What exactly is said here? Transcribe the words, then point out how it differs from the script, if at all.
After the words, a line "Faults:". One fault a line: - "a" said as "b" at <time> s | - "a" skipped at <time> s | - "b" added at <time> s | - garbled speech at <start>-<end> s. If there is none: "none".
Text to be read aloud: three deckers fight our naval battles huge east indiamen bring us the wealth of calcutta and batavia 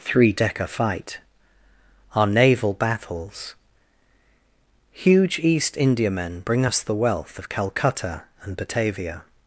three decker fight our naval battles huge east indiamen bring us the wealth of calcutta and batavia
Faults:
- "deckers" said as "decker" at 0.3 s